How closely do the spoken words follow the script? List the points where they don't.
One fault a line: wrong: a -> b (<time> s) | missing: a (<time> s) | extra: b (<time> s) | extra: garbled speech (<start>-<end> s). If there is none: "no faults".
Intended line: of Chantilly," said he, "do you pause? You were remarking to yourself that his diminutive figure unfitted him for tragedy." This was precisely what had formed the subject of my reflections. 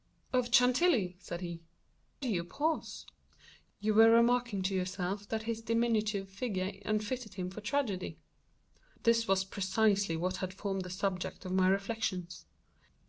no faults